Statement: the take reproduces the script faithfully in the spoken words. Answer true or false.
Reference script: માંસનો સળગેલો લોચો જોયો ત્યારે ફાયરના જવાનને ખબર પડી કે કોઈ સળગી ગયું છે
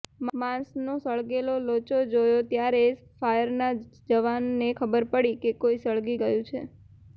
true